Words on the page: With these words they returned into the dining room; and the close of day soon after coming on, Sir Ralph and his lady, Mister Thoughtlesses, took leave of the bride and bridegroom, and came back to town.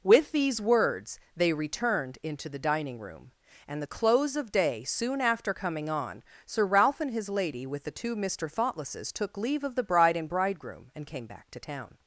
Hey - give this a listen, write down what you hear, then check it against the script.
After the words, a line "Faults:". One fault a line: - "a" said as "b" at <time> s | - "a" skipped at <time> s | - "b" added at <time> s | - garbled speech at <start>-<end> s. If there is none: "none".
With these words they returned into the dining room; and the close of day soon after coming on, Sir Ralph and his lady, with the two Mister Thoughtlesses, took leave of the bride and bridegroom, and came back to town.
Faults:
- "with the two" added at 7.7 s